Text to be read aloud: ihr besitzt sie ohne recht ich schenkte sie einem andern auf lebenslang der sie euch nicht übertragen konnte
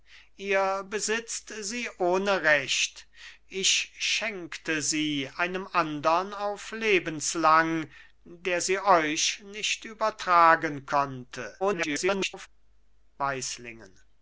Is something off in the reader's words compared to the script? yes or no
yes